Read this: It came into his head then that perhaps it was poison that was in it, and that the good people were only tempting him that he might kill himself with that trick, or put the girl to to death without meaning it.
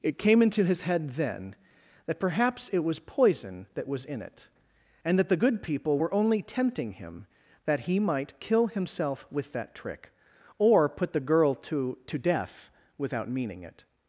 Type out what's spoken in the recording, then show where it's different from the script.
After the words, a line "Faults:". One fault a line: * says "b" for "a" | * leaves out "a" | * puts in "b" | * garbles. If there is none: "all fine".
It came into his head then that perhaps it was poison that was in it, and that the good people were only tempting him that he might kill himself with that trick, or put the girl to to death without meaning it.
Faults:
all fine